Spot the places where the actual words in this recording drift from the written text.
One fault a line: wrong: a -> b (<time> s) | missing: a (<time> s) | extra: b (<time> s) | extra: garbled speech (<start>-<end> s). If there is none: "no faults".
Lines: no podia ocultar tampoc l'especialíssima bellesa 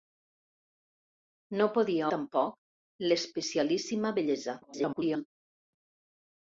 missing: ocultar (2.1 s)
extra: garbled speech (4.6-5.3 s)